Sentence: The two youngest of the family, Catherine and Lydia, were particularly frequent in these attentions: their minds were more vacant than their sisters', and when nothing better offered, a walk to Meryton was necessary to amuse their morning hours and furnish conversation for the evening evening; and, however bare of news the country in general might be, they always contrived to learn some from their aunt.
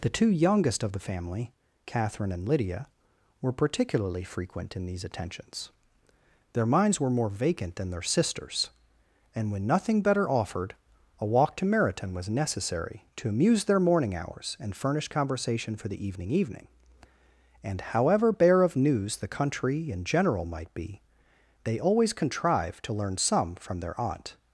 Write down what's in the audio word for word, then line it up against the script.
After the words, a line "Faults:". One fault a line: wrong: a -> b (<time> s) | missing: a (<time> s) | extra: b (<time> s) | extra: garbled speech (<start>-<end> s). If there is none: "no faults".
The two youngest of the family, Catherine and Lydia, were particularly frequent in these attentions: their minds were more vacant than their sisters', and when nothing better offered, a walk to Meryton was necessary to amuse their morning hours and furnish conversation for the evening evening; and, however bare of news the country in general might be, they always contrived to learn some from their aunt.
Faults:
no faults